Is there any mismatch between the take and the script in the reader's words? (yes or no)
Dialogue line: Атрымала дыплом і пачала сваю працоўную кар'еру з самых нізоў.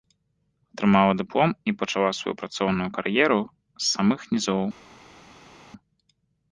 no